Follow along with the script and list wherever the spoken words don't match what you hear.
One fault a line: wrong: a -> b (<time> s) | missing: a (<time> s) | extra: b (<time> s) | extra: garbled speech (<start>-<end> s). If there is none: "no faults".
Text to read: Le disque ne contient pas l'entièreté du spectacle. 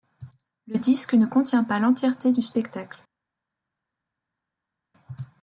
no faults